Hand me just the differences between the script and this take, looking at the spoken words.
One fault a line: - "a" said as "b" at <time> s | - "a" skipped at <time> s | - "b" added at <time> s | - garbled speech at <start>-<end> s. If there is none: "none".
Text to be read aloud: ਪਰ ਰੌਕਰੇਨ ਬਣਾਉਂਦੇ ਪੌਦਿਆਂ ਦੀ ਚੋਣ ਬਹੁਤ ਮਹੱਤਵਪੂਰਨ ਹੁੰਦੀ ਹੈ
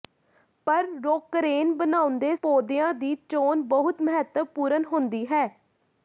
none